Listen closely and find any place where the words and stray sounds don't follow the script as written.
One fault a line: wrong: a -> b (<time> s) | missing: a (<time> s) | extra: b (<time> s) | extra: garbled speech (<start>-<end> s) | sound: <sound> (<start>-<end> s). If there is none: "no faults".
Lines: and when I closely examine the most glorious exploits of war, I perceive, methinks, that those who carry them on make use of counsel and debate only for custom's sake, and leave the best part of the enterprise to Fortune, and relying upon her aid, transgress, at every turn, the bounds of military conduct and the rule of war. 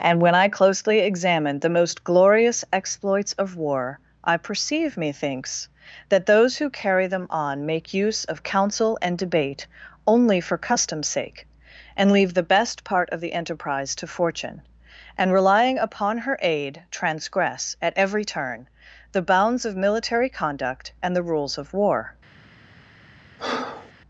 wrong: rule -> rules (21.2 s)
sound: breath (23.4-23.9 s)